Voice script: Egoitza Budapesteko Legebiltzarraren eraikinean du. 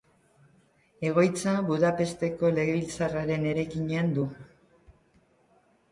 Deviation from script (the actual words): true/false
false